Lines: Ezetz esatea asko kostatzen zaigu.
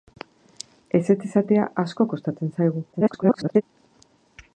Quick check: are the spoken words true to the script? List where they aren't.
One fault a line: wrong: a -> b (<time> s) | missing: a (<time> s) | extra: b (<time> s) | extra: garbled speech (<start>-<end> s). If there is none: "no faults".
extra: garbled speech (2.9-3.6 s)